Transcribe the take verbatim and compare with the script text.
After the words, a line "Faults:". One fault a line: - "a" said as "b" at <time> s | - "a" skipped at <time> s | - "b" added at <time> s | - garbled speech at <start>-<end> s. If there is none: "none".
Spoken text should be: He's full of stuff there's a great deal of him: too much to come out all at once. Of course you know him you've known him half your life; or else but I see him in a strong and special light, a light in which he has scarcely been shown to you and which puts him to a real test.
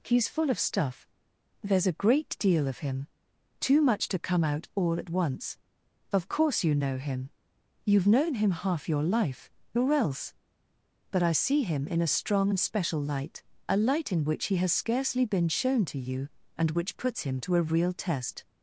He's full of stuff there's a great deal of him: too much to come out all at once. Of course you know him you've known him half your life; or else but I see him in a strong and special light, a light in which he has scarcely been shown to you and which puts him to a real test.
Faults:
none